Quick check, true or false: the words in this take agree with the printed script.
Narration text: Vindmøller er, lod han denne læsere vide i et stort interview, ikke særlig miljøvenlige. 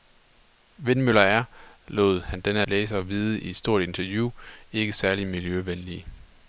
true